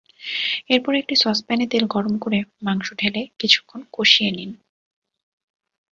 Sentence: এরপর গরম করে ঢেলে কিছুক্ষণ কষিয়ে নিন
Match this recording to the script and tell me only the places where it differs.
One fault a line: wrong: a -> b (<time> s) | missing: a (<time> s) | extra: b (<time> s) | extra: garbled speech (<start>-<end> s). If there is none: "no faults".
extra: একটি সসপ্যানে তেল (0.9 s)
extra: মাংস (2.6 s)